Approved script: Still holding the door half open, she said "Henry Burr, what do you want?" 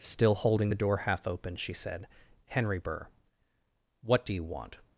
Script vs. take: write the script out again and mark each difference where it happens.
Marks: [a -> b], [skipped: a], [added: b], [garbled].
Still holding the door half open, she said "Henry Burr, what do you want?"